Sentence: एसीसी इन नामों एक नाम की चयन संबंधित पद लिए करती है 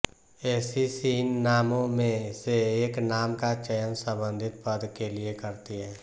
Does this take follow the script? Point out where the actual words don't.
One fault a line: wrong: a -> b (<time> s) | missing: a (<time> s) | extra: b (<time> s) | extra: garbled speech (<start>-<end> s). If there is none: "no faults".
extra: में से (1.9 s)
wrong: की -> का (3.4 s)
extra: के (5.0 s)